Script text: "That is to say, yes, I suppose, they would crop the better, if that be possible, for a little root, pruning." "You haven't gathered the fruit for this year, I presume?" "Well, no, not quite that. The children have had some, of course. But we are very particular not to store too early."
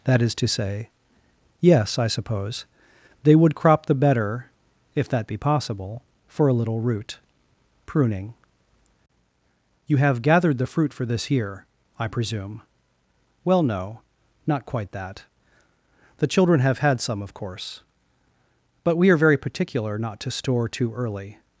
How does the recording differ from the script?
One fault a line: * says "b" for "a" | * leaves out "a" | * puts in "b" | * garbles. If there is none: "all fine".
* says "have" for "haven't"